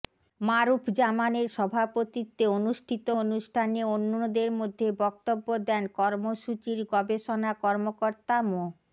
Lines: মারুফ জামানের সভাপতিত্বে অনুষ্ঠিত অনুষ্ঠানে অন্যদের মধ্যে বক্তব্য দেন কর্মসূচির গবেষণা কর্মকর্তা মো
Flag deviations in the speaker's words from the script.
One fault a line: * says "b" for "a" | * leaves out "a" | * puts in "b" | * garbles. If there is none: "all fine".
all fine